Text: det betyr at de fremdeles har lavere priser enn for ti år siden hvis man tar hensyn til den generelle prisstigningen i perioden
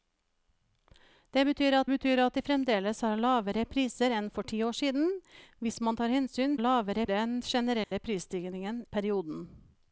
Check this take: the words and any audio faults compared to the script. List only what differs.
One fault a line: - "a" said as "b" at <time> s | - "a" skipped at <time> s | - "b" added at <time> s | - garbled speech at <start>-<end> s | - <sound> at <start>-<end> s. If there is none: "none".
- "betyr at" added at 1.9 s
- "til" said as "lavere" at 6.6 s
- dropout at 7.8-7.9 s
- "i" skipped at 8.8 s